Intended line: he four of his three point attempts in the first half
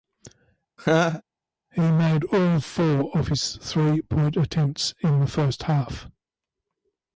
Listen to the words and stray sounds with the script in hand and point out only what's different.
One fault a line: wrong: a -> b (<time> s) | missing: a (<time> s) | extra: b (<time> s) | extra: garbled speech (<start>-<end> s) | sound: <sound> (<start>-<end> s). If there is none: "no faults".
sound: laugh (0.8-1.2 s)
extra: made all (1.8 s)